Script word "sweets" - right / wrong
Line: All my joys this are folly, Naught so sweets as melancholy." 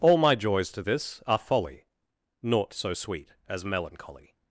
wrong